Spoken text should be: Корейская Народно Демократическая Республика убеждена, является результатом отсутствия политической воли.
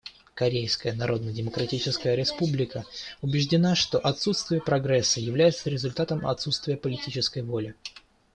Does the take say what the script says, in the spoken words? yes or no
no